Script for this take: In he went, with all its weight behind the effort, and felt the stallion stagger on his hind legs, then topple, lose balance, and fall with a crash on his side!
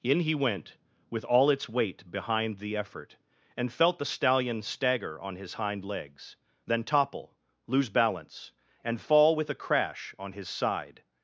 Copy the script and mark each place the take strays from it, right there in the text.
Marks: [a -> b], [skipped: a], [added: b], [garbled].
In he went, with all its weight behind the effort, and felt the stallion stagger on his hind legs, then topple, lose balance, and fall with a crash on his side!